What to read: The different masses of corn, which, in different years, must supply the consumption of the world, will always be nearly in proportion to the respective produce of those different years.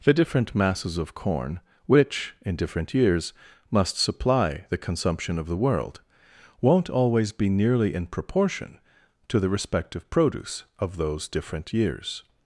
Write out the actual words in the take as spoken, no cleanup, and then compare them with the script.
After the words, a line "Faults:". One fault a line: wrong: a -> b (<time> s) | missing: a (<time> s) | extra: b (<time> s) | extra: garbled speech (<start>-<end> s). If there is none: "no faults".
The different masses of corn, which, in different years, must supply the consumption of the world, won't always be nearly in proportion to the respective produce of those different years.
Faults:
wrong: will -> won't (6.6 s)